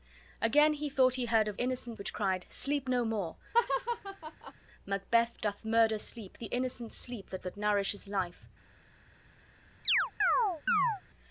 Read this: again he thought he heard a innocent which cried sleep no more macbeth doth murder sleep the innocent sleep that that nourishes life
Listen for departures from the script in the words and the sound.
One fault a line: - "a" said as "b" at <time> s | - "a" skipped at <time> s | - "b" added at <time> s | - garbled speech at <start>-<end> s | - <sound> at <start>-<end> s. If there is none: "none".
- laugh at 3.5-4.5 s
- chirp at 9.8-11.0 s